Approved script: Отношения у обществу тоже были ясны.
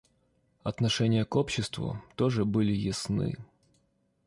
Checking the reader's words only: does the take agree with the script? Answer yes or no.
no